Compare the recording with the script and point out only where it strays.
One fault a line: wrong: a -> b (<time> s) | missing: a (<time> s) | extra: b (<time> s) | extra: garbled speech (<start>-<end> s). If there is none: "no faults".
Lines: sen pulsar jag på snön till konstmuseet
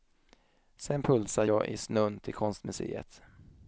wrong: på -> i (1.7 s)